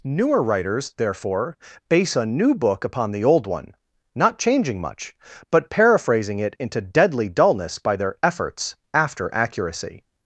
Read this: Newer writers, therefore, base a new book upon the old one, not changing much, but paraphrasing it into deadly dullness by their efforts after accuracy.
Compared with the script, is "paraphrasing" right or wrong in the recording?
right